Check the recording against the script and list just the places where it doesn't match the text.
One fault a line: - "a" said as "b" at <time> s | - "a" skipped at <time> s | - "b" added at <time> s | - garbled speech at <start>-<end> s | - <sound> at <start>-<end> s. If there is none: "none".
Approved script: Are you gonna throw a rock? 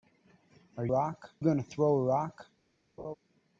- "you" said as "rock" at 0.9 s
- laugh at 3.0-3.1 s